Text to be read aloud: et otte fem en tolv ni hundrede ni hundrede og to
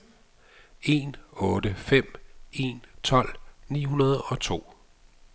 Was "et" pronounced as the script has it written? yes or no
no